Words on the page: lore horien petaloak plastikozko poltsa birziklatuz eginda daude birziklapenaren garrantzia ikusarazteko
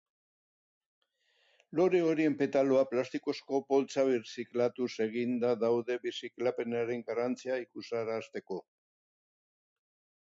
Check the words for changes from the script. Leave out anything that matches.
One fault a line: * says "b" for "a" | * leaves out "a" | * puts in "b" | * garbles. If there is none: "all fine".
all fine